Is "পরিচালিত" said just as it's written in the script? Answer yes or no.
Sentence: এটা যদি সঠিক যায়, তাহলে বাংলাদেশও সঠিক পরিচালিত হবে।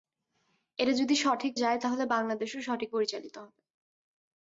yes